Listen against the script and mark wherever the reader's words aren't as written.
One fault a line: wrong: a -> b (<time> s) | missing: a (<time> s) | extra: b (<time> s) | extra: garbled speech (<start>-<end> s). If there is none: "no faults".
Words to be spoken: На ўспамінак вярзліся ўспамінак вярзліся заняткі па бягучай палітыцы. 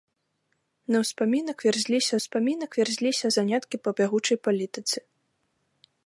no faults